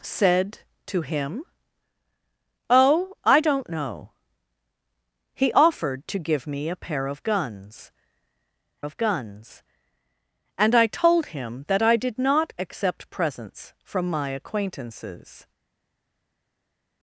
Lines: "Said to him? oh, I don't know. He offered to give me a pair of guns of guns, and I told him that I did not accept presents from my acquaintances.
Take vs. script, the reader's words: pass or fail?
pass